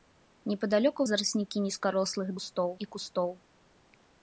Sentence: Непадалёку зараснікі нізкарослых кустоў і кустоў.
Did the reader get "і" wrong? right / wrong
right